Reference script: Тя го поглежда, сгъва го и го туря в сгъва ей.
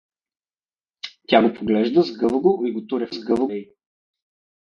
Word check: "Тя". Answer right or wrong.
right